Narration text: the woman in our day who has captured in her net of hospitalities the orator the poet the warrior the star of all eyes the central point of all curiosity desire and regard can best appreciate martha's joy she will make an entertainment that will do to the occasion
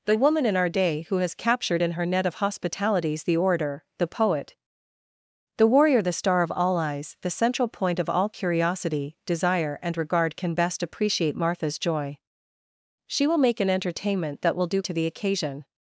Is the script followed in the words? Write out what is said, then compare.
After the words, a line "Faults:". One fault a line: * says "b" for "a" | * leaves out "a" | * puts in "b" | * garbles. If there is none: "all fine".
the woman in our day who has captured in her net of hospitalities the orator the poet the warrior the star of all eyes the central point of all curiosity desire and regard can best appreciate martha's joy she will make an entertainment that will do to the occasion
Faults:
all fine